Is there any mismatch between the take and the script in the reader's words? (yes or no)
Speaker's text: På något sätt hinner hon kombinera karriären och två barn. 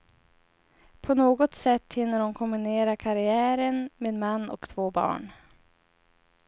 yes